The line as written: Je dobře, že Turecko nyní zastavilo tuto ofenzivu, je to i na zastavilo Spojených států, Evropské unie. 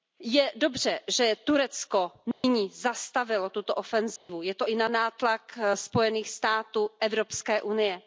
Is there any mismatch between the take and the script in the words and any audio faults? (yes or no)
yes